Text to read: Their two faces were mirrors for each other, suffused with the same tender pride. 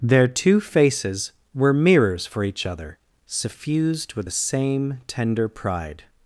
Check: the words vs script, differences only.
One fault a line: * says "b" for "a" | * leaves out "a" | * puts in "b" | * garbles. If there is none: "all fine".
all fine